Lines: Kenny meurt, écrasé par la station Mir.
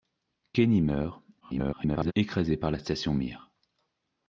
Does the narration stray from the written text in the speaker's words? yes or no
yes